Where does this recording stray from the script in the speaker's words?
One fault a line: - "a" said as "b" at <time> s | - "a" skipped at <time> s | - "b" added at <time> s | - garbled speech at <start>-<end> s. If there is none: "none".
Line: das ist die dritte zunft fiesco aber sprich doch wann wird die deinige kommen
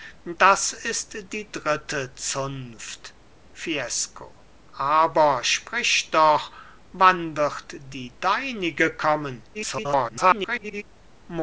- garbled speech at 9.5-10.8 s